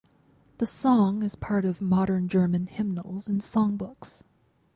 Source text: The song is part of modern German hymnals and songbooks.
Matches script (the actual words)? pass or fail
pass